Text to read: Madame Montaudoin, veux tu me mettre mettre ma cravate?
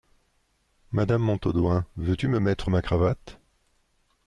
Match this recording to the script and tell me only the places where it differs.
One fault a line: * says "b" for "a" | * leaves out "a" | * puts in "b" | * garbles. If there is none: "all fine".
* leaves out "mettre"